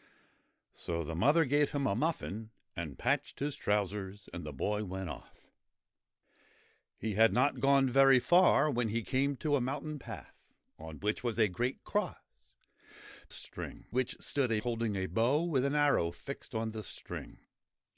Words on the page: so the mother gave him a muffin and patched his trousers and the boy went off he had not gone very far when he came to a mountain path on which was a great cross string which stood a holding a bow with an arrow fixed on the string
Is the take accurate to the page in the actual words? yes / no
yes